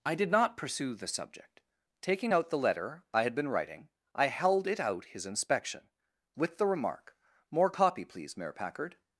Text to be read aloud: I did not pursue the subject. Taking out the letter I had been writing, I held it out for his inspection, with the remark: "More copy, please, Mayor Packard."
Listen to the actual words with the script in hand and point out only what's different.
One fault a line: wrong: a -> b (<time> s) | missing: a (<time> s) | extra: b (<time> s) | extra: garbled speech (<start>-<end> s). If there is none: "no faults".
missing: for (5.0 s)